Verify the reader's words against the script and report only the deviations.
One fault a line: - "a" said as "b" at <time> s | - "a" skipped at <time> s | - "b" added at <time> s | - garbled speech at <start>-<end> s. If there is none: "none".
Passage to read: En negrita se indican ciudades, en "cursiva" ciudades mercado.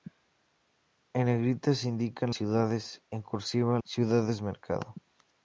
none